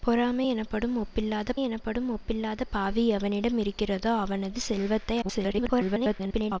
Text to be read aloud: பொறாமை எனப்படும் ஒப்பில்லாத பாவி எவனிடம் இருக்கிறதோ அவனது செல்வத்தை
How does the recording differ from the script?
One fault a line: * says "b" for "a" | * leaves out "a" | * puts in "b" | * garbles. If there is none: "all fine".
* puts in "எனப்படும் ஒப்பில்லாத"
* garbles